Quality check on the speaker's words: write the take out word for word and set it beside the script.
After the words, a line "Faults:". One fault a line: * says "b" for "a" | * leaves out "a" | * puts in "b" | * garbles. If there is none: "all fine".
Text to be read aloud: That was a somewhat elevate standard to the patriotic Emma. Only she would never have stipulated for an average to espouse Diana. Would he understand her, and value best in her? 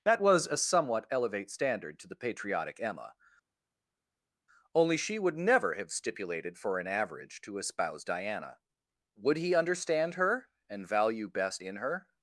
That was a somewhat elevate standard to the patriotic Emma. Only she would never have stipulated for an average to espouse Diana. Would he understand her, and value best in her?
Faults:
all fine